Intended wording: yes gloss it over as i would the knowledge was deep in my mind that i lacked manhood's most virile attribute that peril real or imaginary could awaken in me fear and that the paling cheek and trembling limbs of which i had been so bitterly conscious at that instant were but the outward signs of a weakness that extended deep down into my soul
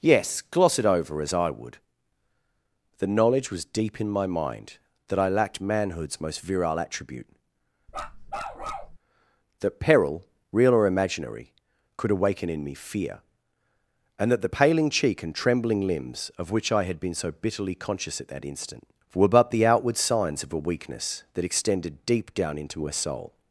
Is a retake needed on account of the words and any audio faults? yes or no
yes